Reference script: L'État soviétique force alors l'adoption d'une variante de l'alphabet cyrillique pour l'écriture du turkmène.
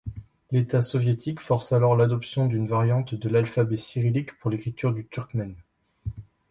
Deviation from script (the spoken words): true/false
false